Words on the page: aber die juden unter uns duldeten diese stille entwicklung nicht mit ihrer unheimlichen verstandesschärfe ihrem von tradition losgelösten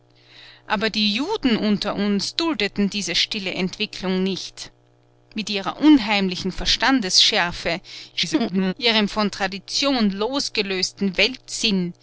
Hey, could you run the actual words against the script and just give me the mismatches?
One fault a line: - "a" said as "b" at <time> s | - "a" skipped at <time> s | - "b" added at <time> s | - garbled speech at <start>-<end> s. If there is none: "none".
- garbled speech at 8.1-8.7 s